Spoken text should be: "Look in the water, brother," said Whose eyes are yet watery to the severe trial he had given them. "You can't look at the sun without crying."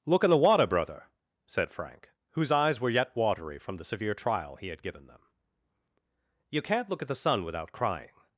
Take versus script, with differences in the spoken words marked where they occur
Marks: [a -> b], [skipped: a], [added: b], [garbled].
"Look in the water, brother," said [added: Frank] Whose eyes [are -> were] yet watery [to -> from] the severe trial he had given them. "You can't look at the sun without crying."